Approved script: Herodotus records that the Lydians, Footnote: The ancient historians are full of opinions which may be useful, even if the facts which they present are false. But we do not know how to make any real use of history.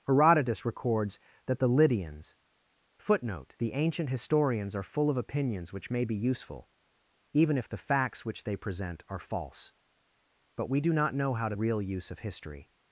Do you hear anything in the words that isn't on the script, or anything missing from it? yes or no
yes